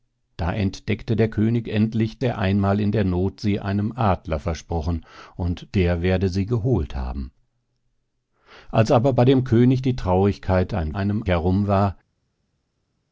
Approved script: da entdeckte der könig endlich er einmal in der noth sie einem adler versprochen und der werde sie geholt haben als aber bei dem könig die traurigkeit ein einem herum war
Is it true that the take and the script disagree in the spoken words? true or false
false